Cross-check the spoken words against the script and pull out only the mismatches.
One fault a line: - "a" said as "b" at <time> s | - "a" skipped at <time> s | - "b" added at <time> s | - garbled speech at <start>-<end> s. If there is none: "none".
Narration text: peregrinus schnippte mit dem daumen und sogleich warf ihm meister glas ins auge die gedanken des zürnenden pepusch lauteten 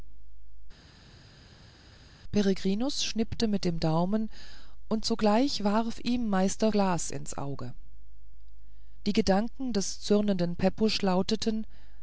none